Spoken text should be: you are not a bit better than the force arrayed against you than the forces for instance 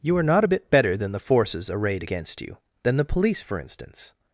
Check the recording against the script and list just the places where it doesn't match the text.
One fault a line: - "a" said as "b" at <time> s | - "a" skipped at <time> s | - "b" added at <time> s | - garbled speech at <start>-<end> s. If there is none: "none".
- "force" said as "forces" at 1.2 s
- "forces" said as "police" at 3.0 s